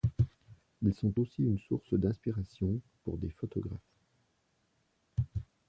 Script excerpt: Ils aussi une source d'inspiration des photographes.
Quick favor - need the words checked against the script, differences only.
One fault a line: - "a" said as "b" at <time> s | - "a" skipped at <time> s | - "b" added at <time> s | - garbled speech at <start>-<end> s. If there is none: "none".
- "sont" added at 0.9 s
- "pour" added at 3.0 s